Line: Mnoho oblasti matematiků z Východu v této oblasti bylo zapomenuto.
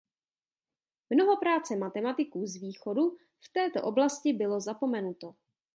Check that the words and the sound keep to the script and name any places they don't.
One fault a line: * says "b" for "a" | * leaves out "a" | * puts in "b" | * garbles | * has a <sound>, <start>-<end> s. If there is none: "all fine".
* says "práce" for "oblasti"